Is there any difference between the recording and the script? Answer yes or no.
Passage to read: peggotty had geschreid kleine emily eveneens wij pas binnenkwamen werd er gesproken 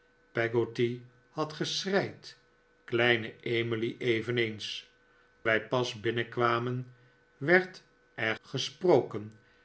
no